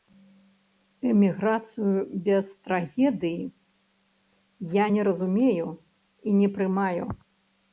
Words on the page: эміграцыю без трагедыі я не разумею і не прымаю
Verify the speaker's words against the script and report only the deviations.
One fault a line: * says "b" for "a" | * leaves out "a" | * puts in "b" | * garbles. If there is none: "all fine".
all fine